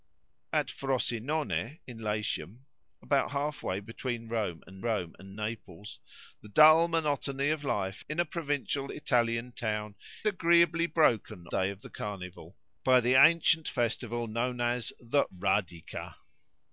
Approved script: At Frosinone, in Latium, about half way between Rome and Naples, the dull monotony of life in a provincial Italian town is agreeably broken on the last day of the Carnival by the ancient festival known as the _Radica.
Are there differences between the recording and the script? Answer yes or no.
yes